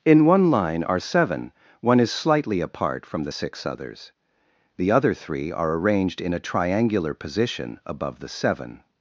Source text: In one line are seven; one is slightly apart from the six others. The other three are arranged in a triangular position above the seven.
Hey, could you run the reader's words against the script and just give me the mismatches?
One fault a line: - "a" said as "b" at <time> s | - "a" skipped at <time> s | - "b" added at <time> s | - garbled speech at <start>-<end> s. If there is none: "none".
none